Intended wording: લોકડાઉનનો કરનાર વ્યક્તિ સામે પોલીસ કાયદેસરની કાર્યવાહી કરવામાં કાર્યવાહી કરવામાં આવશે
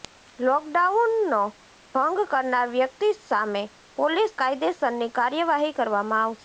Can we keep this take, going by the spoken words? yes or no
no